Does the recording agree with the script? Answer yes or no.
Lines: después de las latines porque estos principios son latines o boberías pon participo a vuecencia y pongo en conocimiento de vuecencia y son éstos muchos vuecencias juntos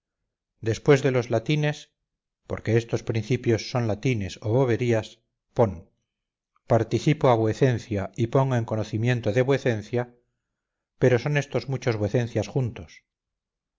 no